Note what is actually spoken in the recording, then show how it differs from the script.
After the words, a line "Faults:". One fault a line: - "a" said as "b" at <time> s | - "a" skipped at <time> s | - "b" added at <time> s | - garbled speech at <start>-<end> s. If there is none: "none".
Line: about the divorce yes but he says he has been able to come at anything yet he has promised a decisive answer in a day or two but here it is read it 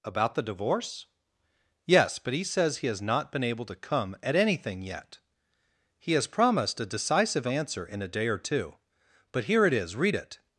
about the divorce yes but he says he has not been able to come at anything yet he has promised a decisive answer in a day or two but here it is read it
Faults:
- "not" added at 3.0 s